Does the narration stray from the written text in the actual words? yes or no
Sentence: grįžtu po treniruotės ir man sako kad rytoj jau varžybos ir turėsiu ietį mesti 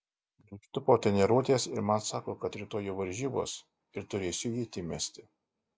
no